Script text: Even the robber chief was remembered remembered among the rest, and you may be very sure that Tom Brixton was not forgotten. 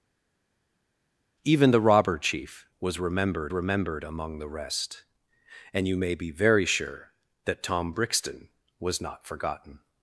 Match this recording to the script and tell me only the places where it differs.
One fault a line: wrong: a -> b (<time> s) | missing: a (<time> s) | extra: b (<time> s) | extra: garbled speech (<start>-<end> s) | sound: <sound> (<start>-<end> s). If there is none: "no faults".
no faults